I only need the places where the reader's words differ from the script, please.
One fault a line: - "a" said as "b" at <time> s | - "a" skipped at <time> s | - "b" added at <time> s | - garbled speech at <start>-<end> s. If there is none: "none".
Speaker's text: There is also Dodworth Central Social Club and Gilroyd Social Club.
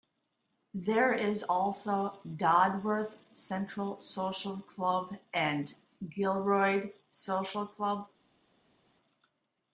none